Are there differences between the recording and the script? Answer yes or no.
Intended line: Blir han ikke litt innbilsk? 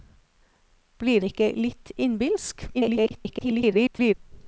yes